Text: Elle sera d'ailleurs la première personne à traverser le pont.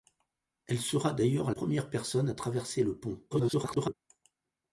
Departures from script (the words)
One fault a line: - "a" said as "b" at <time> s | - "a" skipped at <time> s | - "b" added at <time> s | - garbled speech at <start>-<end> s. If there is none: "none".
- "la" skipped at 1.5 s
- garbled speech at 3.3-3.9 s